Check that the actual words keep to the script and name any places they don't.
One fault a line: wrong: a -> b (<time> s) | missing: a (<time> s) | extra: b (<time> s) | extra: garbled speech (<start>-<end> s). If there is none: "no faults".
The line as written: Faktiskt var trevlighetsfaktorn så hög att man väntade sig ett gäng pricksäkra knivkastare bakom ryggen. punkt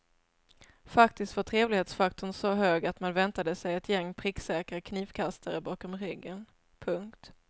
no faults